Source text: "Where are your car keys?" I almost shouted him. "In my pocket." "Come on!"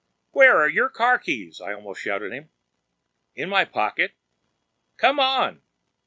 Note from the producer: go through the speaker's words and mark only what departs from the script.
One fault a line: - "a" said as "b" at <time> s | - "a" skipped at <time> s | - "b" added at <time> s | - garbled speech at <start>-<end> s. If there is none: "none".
none